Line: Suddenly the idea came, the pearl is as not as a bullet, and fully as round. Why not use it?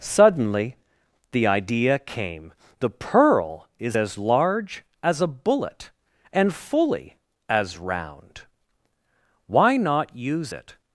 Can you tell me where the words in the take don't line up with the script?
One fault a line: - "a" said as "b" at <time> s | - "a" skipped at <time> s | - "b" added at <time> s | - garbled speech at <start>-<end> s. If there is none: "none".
- "not" said as "large" at 4.1 s